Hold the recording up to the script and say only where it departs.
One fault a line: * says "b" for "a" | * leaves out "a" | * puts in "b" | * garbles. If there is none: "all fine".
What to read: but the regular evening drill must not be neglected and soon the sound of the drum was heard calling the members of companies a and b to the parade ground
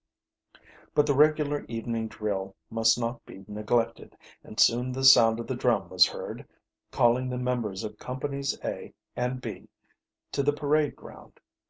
all fine